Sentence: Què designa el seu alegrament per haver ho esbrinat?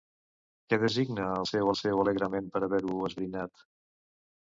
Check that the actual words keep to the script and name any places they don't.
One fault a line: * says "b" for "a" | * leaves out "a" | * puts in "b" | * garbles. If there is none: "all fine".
* puts in "seu"